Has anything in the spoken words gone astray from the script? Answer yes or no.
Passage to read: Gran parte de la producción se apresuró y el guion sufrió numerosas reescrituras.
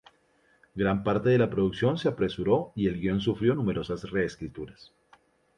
no